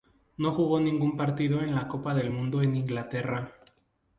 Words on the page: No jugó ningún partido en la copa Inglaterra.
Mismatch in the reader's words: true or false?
true